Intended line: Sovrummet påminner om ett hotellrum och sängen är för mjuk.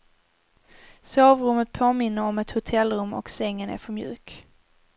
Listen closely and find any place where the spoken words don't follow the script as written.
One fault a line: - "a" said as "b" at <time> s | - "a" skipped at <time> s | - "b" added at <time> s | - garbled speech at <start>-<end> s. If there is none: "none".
none